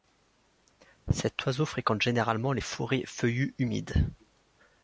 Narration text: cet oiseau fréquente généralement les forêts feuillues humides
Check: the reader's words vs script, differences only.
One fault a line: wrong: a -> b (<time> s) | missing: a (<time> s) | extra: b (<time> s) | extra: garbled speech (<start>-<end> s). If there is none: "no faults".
no faults